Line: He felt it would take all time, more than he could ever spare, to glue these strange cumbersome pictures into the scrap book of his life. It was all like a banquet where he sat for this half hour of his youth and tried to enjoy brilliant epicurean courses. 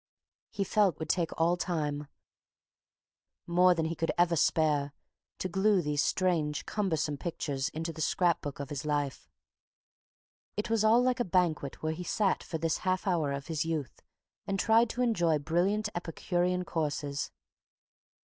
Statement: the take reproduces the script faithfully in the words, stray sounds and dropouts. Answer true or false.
true